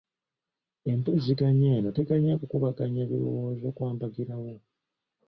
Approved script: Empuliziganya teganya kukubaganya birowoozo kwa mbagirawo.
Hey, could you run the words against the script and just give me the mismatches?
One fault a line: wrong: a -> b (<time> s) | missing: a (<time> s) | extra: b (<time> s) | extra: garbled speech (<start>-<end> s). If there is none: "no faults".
extra: eno (1.8 s)